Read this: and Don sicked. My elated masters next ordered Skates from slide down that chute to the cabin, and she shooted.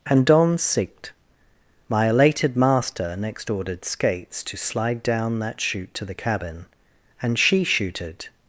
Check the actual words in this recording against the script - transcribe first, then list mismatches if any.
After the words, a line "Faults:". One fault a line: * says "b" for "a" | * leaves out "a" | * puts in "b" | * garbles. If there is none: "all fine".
and Don sicked. My elated master next ordered Skates to slide down that chute to the cabin, and she shooted.
Faults:
* says "master" for "masters"
* says "to" for "from"